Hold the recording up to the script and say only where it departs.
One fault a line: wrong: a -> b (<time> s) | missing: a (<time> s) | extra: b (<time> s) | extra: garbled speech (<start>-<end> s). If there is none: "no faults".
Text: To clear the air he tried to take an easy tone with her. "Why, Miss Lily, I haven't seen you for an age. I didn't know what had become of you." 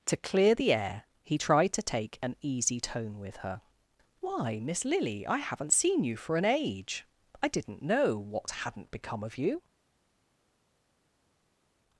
wrong: had -> hadn't (8.5 s)